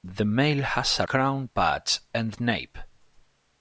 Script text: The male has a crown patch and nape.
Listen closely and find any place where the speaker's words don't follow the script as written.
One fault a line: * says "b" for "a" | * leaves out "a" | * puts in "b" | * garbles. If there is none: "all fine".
all fine